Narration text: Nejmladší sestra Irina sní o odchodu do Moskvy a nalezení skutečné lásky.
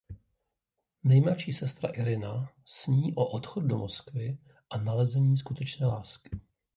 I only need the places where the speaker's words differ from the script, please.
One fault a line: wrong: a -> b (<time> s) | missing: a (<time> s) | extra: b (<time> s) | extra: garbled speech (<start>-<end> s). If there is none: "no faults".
no faults